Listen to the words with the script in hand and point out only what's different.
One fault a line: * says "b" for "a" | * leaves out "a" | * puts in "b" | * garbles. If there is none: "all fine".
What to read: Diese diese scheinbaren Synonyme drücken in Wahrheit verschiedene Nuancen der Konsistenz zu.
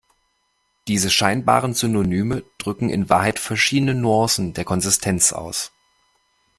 * leaves out "diese"
* says "aus" for "zu"